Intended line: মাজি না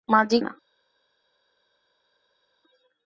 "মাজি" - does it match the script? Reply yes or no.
yes